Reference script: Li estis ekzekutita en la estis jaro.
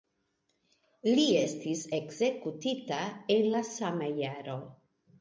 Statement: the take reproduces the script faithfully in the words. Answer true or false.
false